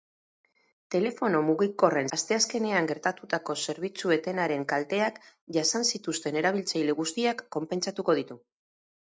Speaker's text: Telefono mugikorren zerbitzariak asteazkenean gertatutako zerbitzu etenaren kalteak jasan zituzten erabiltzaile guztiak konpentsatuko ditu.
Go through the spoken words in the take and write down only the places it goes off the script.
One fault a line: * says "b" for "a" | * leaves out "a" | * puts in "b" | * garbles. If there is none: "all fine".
* leaves out "zerbitzariak"